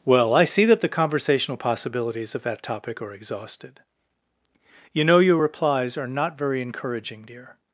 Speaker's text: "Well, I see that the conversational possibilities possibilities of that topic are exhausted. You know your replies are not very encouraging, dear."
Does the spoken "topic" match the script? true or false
true